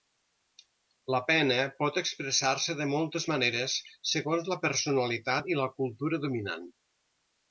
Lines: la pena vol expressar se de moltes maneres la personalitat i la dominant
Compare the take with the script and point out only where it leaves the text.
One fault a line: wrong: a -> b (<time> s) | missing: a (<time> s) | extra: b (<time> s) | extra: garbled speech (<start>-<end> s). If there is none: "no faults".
wrong: vol -> pot (1.8 s)
extra: segons (4.1 s)
extra: cultura (5.8 s)